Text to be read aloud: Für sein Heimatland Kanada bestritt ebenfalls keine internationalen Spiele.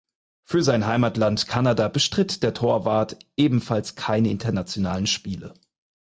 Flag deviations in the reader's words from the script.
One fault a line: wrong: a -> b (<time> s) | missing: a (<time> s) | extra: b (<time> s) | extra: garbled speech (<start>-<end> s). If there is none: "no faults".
extra: der Torwart (2.4 s)